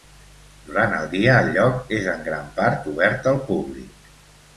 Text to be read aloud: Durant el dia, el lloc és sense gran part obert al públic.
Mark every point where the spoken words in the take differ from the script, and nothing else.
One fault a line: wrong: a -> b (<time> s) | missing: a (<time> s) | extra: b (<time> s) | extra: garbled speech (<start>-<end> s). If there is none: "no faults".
wrong: sense -> en (2.1 s)